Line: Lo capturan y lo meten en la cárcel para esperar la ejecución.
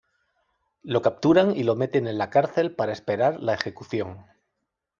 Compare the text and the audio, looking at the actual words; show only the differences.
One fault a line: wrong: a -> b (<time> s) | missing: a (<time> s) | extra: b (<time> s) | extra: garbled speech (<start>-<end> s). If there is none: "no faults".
no faults